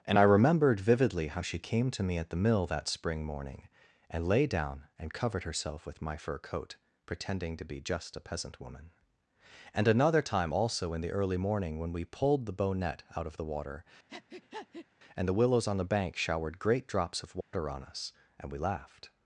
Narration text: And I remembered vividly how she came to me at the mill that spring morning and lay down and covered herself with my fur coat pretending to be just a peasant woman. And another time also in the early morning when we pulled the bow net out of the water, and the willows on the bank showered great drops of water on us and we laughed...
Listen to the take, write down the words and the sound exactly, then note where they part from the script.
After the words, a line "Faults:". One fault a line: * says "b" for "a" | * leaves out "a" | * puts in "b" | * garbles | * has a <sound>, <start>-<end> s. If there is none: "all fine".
And I remembered vividly how she came to me at the mill that spring morning and lay down and covered herself with my fur coat pretending to be just a peasant woman. And another time also in the early morning when we pulled the bow net out of the water, and the willows on the bank showered great drops of water on us and we laughed...
Faults:
* has a breath, 14.1-14.9 s
* has a dropout, 17.4-17.5 s